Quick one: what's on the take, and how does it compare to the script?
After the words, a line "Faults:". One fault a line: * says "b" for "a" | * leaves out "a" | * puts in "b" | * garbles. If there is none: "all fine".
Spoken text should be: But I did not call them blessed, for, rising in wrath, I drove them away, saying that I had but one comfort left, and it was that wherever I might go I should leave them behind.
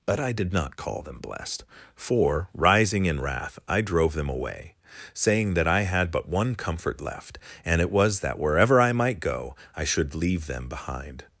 But I did not call them blessed, for, rising in wrath, I drove them away, saying that I had but one comfort left, and it was that wherever I might go I should leave them behind.
Faults:
all fine